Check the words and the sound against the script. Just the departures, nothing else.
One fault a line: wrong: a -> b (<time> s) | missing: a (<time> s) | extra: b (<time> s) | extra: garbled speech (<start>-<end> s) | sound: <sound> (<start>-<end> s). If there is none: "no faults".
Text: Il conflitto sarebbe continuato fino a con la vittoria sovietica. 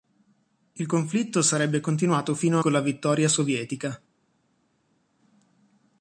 no faults